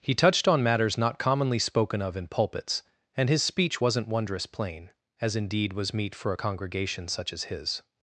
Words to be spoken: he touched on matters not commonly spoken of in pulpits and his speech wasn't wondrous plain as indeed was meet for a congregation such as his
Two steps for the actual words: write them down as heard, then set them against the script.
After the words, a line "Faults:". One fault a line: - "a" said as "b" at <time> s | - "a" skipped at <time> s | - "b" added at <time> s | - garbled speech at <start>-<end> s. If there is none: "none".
he touched on matters not commonly spoken of in pulpits and his speech wasn't wondrous plain as indeed was meet for a congregation such as his
Faults:
none